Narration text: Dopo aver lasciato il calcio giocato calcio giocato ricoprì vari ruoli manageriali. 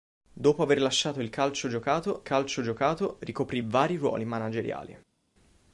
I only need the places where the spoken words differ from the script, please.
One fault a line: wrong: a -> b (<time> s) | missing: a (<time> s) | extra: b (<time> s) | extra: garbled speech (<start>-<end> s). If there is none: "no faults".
no faults